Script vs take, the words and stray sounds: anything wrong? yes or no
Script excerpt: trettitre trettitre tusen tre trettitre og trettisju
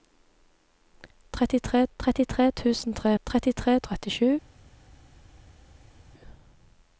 no